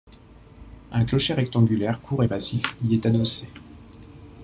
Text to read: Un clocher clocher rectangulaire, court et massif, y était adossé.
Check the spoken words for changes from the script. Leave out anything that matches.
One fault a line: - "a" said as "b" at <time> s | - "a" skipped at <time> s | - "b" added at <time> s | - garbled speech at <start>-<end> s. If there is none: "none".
- "clocher" skipped at 1.3 s
- "était" said as "est" at 2.9 s